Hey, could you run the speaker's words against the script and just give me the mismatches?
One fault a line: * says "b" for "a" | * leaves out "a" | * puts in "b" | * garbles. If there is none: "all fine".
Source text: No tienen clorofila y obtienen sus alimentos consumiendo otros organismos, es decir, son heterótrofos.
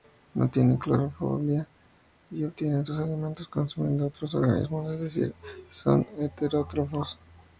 all fine